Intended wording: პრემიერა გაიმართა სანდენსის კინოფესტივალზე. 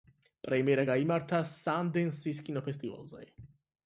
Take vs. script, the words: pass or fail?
pass